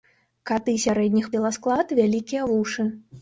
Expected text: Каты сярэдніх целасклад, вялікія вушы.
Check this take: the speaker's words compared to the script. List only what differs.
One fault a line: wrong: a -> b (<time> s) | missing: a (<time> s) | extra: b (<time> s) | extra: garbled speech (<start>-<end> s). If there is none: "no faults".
no faults